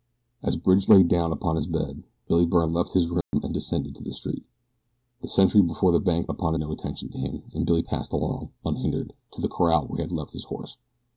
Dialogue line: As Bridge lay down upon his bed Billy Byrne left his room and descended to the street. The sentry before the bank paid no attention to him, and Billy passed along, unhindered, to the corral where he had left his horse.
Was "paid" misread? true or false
true